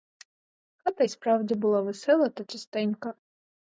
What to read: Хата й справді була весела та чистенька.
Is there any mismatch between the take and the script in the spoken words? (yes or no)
no